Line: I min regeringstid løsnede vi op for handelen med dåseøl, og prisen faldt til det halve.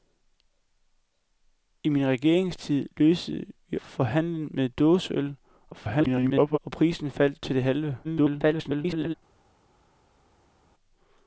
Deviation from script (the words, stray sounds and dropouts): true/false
true